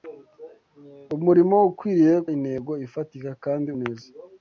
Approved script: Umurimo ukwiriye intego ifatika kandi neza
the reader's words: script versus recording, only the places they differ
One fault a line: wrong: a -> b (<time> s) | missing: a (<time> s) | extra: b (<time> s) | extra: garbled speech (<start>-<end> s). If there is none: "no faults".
no faults